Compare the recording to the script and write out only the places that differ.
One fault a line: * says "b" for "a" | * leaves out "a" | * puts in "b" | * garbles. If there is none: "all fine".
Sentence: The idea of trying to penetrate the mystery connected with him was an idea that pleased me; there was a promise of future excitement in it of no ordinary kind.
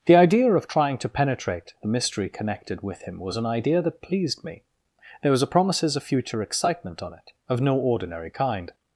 * says "promises" for "promise"
* says "on" for "in"